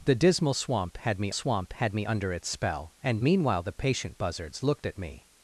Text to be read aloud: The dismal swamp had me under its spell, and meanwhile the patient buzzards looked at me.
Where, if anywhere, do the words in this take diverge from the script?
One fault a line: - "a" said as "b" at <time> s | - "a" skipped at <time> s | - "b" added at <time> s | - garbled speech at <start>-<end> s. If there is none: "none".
- "swamp had me" added at 1.3 s